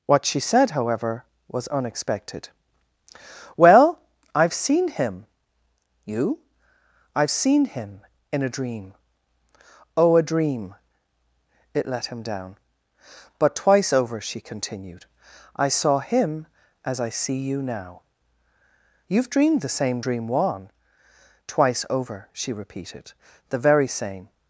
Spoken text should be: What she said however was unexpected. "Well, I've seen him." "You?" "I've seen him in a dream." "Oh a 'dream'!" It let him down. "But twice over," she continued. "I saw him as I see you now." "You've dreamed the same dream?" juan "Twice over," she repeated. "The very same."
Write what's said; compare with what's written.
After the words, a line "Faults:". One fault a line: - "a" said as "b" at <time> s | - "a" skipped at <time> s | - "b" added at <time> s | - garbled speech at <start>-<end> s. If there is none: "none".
What she said however was unexpected. "Well, I've seen him." "You?" "I've seen him in a dream." "Oh a 'dream'!" It let him down. "But twice over," she continued. "I saw him as I see you now." "You've dreamed the same dream?" juan "Twice over," she repeated. "The very same."
Faults:
none